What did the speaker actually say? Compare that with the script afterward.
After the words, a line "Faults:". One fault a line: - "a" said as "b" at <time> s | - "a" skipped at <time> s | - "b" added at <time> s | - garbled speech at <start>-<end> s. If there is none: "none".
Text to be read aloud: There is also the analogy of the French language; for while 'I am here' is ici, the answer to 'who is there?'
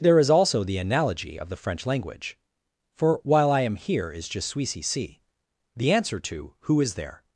There is also the analogy of the French language; for while 'I am here' is je suis ici, the answer to 'who is there?'
Faults:
- "je suis" added at 4.3 s